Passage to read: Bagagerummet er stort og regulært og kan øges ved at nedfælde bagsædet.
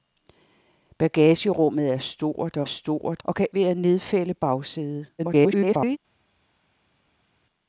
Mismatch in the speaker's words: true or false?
true